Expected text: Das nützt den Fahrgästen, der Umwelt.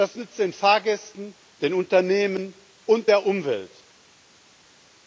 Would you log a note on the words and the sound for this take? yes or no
yes